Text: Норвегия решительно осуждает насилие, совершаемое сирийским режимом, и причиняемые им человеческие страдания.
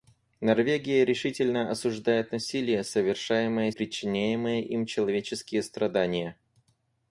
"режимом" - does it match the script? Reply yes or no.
no